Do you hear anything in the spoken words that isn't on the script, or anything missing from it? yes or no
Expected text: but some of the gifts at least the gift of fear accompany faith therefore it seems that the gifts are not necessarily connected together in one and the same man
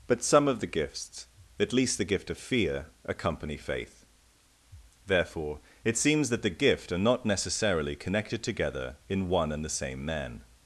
yes